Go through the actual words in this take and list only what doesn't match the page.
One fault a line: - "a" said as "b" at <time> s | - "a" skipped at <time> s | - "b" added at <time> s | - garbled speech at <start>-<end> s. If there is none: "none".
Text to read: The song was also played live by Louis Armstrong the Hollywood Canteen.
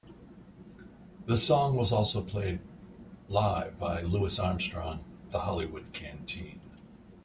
none